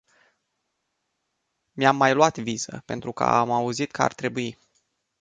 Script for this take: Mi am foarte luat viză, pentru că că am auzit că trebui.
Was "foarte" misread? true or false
true